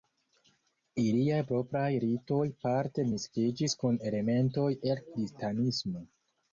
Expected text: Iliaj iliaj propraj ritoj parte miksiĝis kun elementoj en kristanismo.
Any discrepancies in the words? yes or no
yes